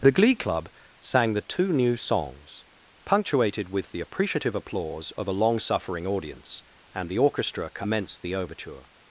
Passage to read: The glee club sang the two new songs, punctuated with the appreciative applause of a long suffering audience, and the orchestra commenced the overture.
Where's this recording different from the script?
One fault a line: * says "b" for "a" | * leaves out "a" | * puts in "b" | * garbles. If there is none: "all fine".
all fine